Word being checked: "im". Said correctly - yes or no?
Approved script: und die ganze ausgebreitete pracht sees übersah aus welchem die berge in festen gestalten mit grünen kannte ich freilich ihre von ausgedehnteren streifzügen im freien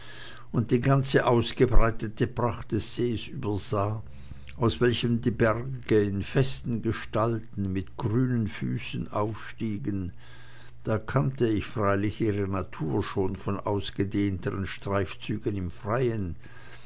yes